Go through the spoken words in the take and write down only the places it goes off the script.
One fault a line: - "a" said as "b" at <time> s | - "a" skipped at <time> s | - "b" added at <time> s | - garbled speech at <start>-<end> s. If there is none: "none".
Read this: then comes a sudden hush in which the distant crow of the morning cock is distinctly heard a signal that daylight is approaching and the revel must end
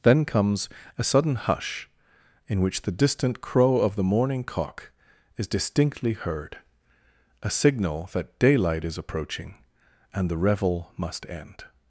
none